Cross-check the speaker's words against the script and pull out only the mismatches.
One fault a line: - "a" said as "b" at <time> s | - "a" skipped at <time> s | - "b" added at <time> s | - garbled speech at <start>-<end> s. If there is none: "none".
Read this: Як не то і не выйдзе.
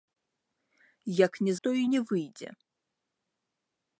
none